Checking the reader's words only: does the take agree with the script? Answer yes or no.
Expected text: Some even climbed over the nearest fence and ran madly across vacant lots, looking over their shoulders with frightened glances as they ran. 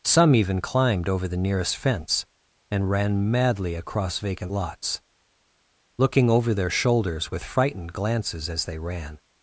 yes